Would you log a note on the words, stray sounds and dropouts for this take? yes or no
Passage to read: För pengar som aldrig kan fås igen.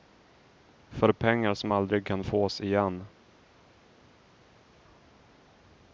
no